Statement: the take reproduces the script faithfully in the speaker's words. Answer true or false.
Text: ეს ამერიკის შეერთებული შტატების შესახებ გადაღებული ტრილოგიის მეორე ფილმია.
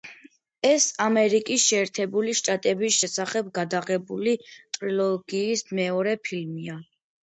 true